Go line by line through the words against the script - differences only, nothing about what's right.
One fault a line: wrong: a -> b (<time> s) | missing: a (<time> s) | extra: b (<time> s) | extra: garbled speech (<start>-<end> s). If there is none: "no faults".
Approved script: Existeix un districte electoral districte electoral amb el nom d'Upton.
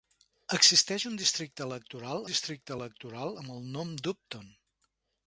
no faults